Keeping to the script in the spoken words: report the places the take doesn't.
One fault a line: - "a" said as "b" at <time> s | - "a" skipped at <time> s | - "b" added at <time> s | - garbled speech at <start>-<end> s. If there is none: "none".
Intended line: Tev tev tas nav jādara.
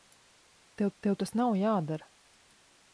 none